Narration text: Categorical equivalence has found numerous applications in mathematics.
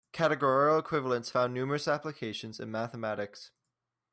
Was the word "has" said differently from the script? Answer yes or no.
yes